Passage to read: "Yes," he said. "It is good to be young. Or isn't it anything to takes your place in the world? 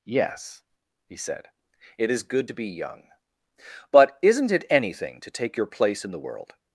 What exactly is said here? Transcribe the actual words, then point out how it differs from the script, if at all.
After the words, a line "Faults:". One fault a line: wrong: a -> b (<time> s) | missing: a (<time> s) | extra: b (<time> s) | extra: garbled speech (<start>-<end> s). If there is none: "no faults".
"Yes," he said. "It is good to be young. But isn't it anything to take your place in the world?
Faults:
wrong: Or -> But (3.9 s)
wrong: takes -> take (5.3 s)